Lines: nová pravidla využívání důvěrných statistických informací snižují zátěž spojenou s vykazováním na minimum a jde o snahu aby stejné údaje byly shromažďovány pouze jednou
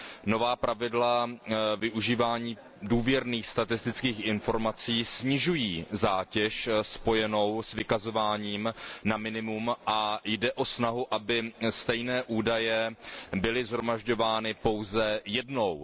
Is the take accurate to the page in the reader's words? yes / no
yes